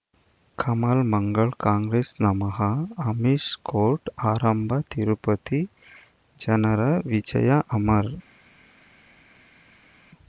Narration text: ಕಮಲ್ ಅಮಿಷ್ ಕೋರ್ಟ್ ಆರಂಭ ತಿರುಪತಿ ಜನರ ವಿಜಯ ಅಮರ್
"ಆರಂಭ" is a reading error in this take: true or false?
false